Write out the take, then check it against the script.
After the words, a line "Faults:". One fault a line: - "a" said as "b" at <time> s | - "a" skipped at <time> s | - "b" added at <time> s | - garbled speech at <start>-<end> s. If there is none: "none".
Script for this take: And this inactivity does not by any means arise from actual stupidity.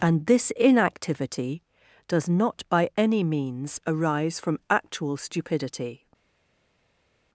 And this inactivity does not by any means arise from actual stupidity.
Faults:
none